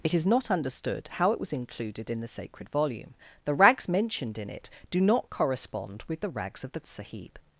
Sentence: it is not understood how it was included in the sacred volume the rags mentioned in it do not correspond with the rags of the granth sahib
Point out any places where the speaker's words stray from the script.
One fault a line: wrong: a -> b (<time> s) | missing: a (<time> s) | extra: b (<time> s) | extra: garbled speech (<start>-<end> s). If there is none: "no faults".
missing: granth (6.8 s)